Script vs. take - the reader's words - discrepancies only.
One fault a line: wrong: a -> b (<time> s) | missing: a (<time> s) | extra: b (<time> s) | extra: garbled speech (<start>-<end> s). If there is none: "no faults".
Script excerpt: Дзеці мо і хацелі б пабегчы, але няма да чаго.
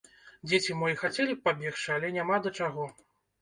no faults